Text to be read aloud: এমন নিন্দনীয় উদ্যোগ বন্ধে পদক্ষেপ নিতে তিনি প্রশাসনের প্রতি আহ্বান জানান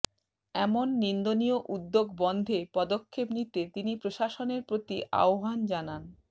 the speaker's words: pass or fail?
pass